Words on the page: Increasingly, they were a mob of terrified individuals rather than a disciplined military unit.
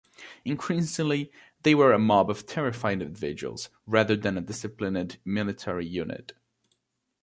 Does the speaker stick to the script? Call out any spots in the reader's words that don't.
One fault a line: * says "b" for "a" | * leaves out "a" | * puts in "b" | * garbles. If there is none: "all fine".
all fine